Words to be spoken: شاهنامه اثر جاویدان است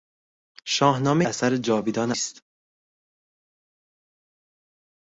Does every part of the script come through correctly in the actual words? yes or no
yes